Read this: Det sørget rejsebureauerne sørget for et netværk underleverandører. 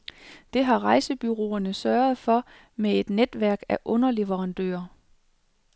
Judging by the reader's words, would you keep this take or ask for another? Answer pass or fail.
fail